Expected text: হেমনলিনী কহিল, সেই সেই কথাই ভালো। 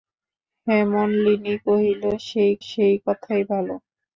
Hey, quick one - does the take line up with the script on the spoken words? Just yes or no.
yes